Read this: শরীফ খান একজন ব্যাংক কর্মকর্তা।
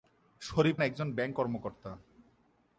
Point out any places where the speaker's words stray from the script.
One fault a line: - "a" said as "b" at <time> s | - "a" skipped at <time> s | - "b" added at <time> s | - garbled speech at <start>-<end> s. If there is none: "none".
- "খান" skipped at 0.8 s